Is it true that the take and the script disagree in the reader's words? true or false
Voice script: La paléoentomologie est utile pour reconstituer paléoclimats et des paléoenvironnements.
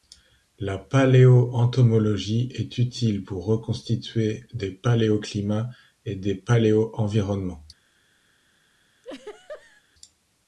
true